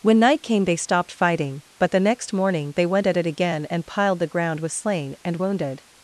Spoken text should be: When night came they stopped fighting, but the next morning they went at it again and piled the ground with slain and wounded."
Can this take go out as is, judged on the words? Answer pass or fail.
pass